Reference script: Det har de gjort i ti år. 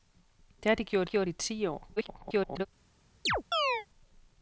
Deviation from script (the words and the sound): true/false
true